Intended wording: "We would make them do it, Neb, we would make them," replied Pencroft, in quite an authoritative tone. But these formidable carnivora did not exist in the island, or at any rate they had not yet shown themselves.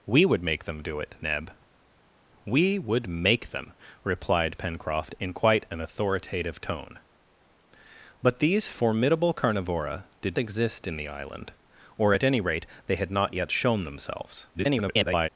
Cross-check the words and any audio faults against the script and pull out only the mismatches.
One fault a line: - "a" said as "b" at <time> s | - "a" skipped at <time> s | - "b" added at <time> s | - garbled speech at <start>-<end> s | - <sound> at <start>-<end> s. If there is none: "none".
- "not" skipped at 10.4 s
- garbled speech at 14.5-15.3 s